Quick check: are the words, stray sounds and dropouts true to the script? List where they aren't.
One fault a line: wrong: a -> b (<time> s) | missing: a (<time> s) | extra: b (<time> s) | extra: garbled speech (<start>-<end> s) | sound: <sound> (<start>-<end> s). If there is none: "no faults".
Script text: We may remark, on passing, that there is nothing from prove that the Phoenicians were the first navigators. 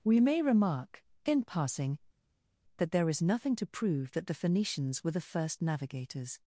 wrong: on -> in (1.3 s)
wrong: from -> to (3.6 s)